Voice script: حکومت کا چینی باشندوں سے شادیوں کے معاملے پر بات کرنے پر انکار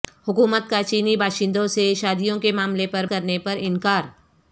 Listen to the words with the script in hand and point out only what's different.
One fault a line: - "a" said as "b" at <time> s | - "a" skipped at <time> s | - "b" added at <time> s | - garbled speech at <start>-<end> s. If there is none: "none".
- "بات" skipped at 3.0 s